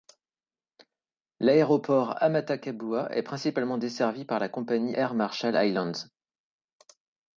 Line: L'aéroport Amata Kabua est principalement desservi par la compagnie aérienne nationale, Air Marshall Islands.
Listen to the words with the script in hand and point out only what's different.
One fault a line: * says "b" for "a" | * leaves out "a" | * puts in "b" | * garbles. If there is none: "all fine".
* leaves out "aérienne nationale"